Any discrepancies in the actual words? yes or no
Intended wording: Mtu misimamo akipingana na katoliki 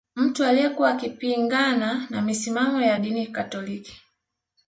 yes